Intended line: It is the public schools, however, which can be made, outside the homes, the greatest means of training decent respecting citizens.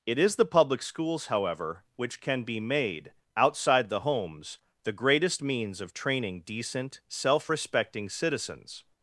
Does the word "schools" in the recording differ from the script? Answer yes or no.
no